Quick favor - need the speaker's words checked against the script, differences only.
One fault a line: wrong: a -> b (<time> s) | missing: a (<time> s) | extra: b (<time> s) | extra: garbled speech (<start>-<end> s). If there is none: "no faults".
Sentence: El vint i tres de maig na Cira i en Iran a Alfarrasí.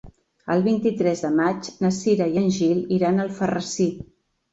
extra: Gil (2.6 s)